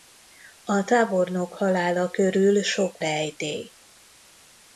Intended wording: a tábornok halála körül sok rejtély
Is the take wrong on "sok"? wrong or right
right